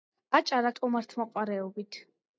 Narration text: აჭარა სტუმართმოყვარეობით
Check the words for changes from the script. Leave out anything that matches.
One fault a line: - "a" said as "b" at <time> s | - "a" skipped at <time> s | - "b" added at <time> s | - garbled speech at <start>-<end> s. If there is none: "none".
none